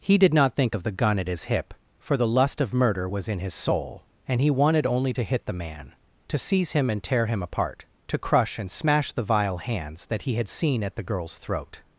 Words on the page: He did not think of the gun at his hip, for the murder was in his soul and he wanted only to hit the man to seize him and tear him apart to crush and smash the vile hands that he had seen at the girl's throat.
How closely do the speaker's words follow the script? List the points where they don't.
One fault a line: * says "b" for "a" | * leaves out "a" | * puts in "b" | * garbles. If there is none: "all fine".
* puts in "lust of"